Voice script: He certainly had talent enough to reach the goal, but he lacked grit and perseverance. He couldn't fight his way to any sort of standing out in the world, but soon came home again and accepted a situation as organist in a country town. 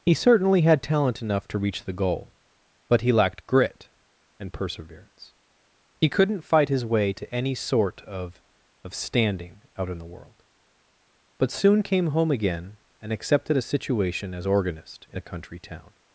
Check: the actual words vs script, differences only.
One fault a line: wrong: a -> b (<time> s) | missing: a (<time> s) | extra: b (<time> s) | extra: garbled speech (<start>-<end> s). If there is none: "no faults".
extra: of (8.8 s)